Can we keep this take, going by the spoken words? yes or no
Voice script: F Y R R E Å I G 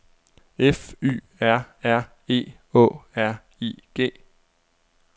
no